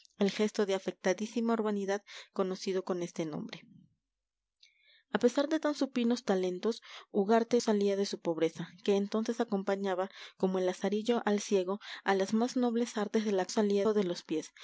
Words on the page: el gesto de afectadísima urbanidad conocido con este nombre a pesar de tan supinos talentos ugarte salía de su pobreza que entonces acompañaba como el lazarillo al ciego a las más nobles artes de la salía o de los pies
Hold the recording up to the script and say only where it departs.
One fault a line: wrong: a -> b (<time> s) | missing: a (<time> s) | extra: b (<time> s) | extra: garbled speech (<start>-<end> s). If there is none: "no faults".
no faults